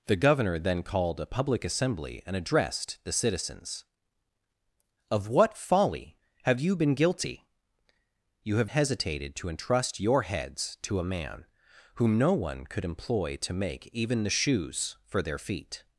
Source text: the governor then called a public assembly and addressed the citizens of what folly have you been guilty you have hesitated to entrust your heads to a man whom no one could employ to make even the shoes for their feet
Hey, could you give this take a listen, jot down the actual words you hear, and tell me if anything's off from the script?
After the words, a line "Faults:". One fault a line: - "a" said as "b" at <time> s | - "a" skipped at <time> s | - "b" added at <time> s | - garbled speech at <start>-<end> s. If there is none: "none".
the governor then called a public assembly and addressed the citizens of what folly have you been guilty you have hesitated to entrust your heads to a man whom no one could employ to make even the shoes for their feet
Faults:
none